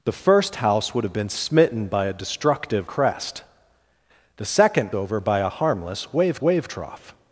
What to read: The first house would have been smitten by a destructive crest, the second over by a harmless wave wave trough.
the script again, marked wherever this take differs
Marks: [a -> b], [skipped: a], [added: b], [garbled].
The first house would have been smitten by a destructive crest, the second over by a harmless wave wave trough.